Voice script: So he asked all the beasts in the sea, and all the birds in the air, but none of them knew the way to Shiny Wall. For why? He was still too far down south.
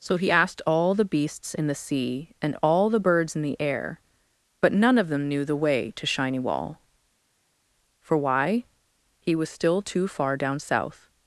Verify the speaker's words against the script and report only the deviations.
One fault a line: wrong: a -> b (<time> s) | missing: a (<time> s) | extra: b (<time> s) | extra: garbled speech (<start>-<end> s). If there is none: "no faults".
no faults